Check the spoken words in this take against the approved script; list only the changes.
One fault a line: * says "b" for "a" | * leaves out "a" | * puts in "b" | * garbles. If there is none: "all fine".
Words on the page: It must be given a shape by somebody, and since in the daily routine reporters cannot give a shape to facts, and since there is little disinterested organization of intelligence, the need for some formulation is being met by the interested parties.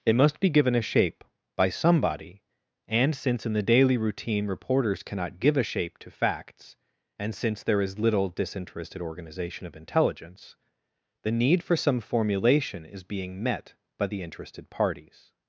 all fine